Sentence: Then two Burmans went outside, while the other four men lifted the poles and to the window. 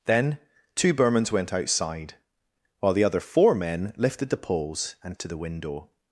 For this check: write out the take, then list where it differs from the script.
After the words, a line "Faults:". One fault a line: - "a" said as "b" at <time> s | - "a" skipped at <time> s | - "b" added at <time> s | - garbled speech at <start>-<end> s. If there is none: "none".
Then two Burmans went outside, while the other four men lifted the poles and to the window.
Faults:
none